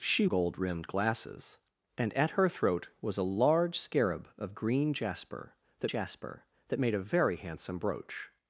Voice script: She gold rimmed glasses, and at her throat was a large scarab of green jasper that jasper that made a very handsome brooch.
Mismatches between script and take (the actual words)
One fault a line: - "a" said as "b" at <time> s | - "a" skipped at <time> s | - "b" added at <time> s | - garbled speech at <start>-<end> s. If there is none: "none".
none